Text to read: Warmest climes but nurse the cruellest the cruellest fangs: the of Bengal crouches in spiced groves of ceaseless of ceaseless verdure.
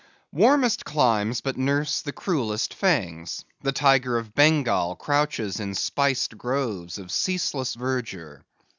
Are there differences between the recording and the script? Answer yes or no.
yes